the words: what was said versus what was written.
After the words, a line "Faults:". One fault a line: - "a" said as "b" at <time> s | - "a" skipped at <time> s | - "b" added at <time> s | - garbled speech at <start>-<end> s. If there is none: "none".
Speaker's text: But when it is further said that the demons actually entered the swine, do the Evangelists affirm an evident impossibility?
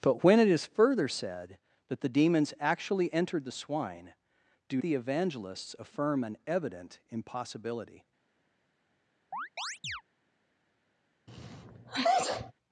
But when it is further said that the demons actually entered the swine, do the Evangelists affirm an evident impossibility?
Faults:
none